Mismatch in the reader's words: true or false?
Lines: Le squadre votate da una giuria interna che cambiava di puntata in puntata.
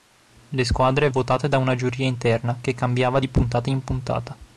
false